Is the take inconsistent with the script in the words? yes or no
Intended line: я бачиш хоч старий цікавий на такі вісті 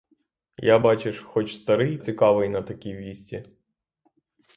no